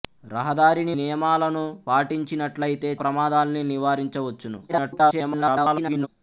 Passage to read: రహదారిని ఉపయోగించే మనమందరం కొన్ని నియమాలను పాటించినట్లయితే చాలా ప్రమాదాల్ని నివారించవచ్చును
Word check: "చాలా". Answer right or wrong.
wrong